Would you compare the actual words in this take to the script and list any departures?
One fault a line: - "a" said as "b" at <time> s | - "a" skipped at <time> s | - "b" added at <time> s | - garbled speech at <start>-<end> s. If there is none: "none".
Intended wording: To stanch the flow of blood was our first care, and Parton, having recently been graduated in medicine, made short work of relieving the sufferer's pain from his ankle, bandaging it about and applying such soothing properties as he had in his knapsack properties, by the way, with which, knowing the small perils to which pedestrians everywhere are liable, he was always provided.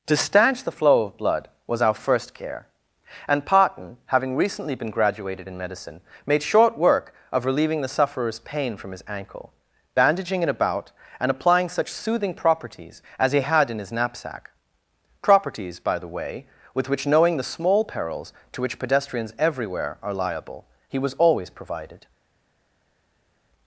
none